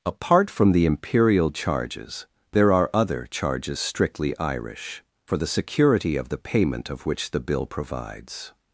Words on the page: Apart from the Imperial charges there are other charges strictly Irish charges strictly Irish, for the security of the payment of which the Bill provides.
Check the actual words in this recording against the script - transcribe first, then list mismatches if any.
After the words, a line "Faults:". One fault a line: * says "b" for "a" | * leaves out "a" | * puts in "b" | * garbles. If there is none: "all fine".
Apart from the Imperial charges there are other charges strictly Irish, for the security of the payment of which the Bill provides.
Faults:
* leaves out "charges strictly Irish"